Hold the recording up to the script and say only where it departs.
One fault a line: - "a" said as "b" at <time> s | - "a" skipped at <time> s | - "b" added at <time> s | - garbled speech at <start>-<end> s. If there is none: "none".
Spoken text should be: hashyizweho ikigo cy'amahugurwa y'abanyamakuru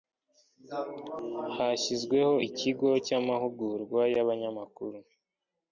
none